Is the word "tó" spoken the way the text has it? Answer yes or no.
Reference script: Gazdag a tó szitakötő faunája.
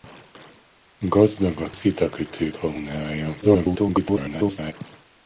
no